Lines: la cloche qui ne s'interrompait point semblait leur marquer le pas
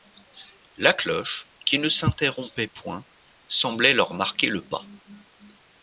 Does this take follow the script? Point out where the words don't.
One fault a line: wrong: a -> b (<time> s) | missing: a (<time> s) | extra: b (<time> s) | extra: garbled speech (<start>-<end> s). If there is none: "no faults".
no faults